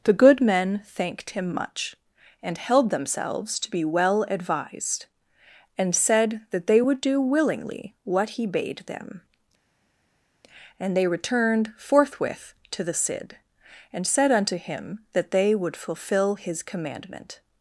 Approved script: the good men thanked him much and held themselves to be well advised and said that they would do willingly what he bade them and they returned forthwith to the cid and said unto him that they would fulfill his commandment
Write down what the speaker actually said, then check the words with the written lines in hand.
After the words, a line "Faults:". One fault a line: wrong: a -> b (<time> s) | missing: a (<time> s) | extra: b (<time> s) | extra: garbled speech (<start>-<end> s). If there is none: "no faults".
the good men thanked him much and held themselves to be well advised and said that they would do willingly what he bade them and they returned forthwith to the cid and said unto him that they would fulfill his commandment
Faults:
no faults